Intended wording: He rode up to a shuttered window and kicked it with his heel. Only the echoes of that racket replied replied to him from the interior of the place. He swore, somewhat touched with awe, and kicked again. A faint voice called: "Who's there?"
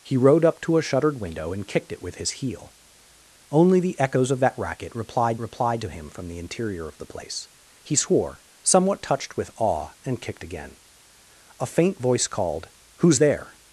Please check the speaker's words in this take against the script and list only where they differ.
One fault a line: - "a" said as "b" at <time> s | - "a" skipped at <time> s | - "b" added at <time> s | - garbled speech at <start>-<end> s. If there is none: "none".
none